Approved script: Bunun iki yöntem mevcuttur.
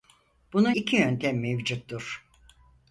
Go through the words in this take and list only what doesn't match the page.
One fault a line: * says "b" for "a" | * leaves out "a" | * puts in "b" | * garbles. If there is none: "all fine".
all fine